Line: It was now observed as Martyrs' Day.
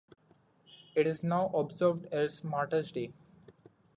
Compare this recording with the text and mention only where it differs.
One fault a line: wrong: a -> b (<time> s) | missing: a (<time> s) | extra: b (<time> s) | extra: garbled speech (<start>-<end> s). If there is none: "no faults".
wrong: was -> is (1.0 s)